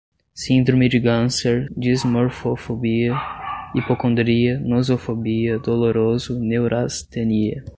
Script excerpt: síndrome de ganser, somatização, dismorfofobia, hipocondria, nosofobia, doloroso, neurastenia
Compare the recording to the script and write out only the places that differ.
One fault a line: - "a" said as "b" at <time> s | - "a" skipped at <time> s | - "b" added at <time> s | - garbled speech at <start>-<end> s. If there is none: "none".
- "somatização" skipped at 1.7 s